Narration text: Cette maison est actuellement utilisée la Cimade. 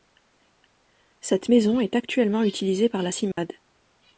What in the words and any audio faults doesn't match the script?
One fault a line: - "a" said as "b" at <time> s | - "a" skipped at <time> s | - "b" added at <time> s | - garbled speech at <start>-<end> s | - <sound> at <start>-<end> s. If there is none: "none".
- "par" added at 2.9 s
- dropout at 3.3-3.4 s